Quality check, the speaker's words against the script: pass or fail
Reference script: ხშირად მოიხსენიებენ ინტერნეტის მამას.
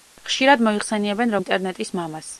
pass